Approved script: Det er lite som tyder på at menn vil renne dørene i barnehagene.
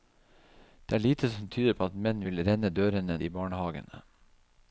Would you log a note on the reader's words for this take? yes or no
no